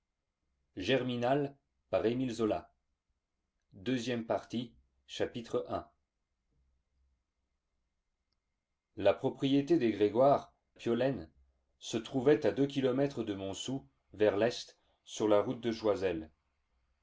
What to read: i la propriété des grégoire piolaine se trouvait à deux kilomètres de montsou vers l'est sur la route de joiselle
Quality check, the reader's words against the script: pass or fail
pass